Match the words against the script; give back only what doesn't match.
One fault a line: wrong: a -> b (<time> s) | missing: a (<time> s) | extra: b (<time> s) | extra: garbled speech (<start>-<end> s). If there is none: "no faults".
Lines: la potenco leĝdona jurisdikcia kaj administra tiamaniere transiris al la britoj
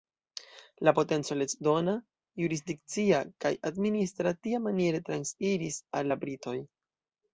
no faults